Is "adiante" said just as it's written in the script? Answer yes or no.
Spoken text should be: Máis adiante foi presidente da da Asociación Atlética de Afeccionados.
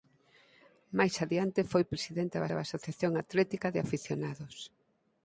yes